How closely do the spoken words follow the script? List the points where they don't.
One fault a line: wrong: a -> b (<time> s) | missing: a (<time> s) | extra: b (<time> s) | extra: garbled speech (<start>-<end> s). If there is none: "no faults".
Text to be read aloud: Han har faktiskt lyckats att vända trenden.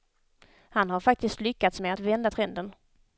extra: med (1.8 s)